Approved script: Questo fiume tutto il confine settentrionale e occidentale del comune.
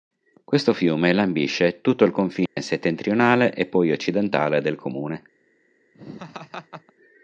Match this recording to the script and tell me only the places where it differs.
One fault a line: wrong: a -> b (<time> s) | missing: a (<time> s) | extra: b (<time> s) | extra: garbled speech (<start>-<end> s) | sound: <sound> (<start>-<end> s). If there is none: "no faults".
extra: lambisce (1.1 s)
sound: dropout (2.5-2.6 s)
extra: poi (3.7 s)
sound: laugh (5.9-6.9 s)